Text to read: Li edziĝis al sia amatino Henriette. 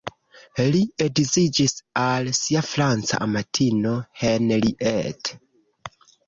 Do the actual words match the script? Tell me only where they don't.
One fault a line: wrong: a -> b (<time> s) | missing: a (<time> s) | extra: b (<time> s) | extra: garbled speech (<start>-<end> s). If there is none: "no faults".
extra: franca (2.7 s)